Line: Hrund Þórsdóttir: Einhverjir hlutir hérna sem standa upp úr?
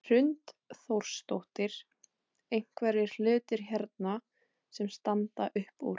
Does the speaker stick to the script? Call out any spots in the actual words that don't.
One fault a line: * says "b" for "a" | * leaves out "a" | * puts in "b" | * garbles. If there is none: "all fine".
all fine